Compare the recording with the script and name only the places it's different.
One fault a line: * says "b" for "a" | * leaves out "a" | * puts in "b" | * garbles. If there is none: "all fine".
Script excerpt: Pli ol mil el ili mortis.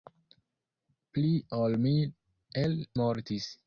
* leaves out "ili"